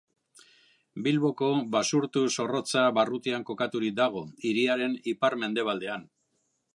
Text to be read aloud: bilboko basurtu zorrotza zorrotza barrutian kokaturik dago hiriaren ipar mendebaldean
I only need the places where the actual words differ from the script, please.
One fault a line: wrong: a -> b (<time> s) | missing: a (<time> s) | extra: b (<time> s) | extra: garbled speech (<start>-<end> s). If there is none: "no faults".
missing: zorrotza (2.9 s)